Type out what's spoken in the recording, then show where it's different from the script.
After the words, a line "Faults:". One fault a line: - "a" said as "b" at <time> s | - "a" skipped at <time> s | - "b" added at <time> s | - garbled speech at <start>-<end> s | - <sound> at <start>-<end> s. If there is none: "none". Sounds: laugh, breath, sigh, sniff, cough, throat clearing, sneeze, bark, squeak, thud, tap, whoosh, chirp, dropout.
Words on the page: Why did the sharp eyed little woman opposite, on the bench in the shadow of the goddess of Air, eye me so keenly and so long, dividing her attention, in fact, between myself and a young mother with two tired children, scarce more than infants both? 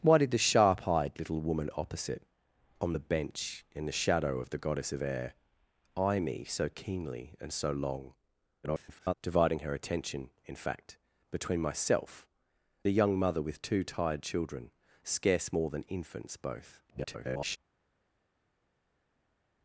Why did the sharp eyed little woman opposite, on the bench in the shadow of the goddess of Air, eye me so keenly and so long, [garbled] dividing her attention, in fact, between myself a young mother with two tired children, scarce more than infants both? [garbled]
Faults:
- garbled speech at 8.6-9.1 s
- "and" skipped at 12.3 s
- garbled speech at 16.9-17.6 s